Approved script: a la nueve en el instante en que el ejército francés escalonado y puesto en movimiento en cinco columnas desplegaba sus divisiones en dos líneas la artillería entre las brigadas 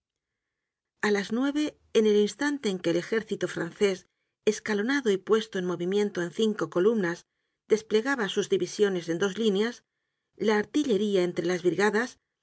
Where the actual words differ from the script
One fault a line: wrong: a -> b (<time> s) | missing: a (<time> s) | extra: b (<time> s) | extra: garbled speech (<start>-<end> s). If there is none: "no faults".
wrong: la -> las (1.1 s)